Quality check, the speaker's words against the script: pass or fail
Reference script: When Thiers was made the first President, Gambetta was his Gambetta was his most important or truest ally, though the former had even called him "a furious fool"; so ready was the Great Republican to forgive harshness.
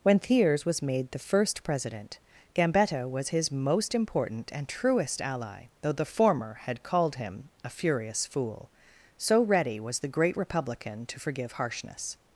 fail